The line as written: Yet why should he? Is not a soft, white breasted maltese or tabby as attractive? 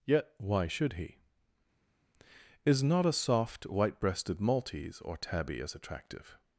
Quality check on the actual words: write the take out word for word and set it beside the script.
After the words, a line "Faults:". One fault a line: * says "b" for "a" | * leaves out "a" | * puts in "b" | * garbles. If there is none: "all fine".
Yet why should he? Is not a soft, white breasted maltese or tabby as attractive?
Faults:
all fine